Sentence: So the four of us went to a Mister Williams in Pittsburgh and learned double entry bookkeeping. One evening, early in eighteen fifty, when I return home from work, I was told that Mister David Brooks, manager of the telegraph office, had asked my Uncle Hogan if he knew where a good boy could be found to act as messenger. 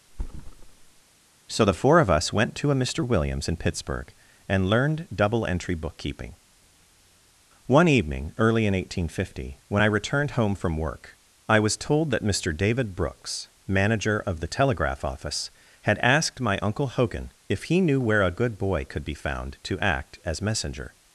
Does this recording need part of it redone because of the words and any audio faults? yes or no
yes